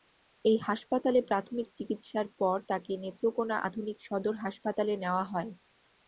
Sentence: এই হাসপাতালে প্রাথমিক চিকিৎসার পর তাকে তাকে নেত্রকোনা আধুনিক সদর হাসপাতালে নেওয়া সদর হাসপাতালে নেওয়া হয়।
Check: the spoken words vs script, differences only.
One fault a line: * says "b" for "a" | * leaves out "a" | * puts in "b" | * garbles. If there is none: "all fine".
* leaves out "তাকে"
* leaves out "সদর হাসপাতালে নেওয়া"